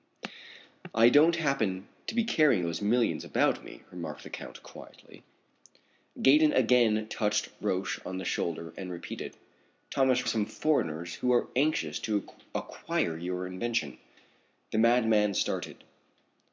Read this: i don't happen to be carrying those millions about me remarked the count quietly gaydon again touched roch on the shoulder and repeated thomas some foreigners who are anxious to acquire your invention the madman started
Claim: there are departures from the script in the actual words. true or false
false